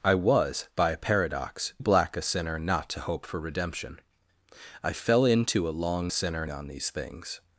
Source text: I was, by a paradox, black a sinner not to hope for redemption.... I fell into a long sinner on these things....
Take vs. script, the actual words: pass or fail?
pass